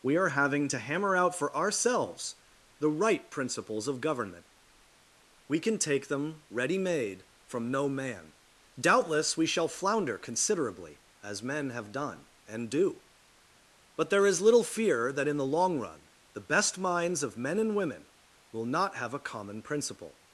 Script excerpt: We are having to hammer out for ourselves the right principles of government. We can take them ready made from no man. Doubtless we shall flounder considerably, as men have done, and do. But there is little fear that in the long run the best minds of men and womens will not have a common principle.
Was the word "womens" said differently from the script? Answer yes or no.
yes